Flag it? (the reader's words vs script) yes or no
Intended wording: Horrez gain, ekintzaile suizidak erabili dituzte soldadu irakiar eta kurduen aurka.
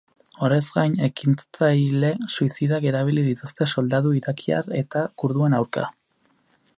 no